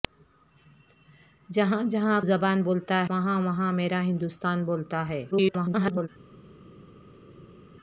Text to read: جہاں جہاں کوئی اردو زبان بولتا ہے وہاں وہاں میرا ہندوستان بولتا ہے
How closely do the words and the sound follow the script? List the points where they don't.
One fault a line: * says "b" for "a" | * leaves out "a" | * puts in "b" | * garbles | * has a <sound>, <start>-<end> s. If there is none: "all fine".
* leaves out "کوئی اردو"
* leaves out "ہے"
* garbles